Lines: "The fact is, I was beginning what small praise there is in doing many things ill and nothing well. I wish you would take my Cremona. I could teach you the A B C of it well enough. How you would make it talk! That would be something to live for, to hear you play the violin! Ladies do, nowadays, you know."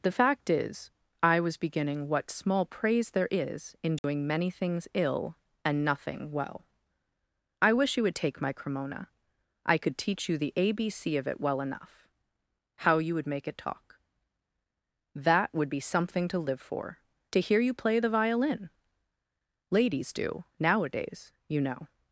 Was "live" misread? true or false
false